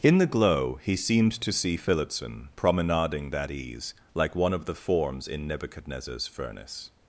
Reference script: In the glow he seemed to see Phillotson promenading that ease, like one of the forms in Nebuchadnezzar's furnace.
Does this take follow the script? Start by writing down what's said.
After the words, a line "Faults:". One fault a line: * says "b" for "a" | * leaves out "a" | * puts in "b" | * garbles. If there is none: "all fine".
In the glow he seemed to see Phillotson promenading that ease, like one of the forms in Nebuchadnezzar's furnace.
Faults:
all fine